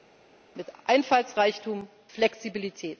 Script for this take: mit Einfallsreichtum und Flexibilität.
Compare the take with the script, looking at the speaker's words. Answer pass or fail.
fail